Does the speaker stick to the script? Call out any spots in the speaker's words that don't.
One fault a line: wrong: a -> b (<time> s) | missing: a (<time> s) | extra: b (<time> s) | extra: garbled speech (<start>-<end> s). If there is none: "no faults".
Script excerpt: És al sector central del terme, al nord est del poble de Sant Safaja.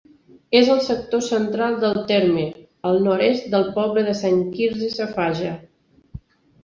extra: Quirze (4.5 s)